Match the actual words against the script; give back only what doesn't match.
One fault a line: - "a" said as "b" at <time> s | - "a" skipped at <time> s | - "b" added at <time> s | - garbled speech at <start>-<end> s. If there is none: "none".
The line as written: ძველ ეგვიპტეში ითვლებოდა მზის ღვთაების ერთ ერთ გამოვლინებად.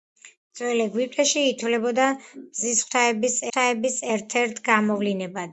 - "ღვთაების" added at 3.5 s